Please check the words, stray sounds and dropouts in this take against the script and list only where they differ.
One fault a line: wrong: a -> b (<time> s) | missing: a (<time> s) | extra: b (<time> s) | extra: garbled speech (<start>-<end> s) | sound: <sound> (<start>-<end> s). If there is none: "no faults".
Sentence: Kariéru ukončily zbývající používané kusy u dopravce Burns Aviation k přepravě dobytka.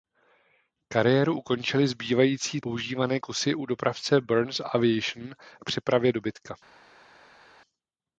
no faults